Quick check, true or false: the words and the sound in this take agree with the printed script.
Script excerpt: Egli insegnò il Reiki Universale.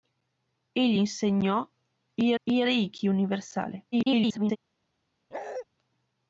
false